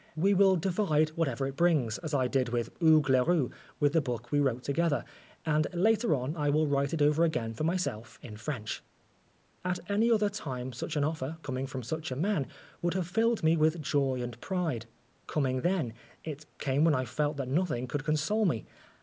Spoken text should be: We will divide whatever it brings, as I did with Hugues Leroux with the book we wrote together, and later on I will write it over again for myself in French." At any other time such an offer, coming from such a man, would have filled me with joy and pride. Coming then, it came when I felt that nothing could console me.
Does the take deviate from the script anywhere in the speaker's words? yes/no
no